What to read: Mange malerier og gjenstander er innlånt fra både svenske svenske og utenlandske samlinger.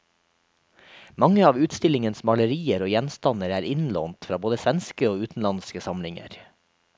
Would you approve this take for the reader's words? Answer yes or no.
no